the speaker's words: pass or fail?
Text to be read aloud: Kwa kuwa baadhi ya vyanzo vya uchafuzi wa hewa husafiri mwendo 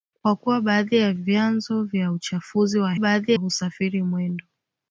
fail